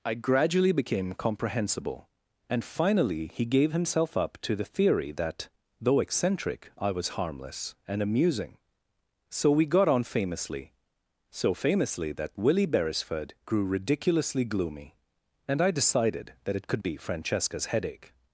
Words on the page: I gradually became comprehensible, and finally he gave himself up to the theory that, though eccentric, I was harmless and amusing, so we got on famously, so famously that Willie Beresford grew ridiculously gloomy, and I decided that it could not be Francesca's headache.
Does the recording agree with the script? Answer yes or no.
no